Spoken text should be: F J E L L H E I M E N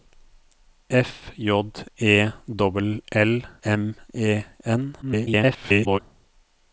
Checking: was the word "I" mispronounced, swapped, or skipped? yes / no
yes